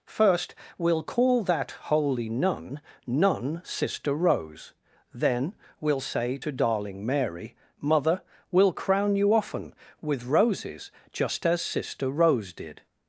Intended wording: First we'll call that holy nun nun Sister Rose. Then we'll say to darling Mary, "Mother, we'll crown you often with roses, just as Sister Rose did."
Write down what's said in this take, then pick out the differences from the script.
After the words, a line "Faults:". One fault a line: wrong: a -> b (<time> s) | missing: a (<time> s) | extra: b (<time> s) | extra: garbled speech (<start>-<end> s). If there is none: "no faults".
First we'll call that holy nun nun Sister Rose. Then we'll say to darling Mary, "Mother, we'll crown you often with roses, just as Sister Rose did."
Faults:
no faults